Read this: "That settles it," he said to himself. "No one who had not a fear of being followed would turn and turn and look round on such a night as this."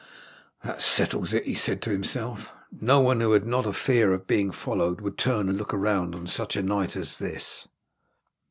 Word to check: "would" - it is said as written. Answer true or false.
true